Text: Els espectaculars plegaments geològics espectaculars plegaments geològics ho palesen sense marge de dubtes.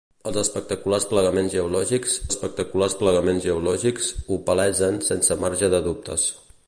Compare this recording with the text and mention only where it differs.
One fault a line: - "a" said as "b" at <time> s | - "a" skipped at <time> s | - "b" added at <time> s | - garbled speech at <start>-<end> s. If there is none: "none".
none